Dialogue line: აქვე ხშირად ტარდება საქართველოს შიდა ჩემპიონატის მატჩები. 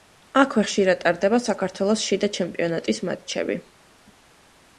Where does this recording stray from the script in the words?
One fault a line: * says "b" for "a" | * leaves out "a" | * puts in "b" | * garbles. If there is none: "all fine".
all fine